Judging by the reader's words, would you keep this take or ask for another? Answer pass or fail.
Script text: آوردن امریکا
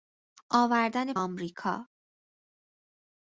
pass